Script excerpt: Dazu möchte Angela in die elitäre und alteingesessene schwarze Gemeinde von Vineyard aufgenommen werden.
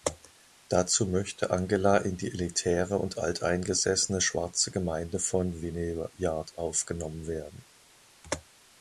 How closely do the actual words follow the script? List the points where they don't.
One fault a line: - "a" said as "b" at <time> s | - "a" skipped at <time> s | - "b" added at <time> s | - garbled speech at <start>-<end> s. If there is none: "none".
none